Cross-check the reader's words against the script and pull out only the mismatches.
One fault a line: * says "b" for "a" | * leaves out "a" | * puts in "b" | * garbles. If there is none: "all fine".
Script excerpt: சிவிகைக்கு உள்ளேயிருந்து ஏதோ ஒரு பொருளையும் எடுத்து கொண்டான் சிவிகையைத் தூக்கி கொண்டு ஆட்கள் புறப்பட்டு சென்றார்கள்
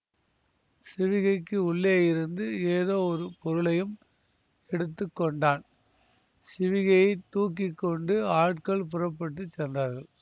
all fine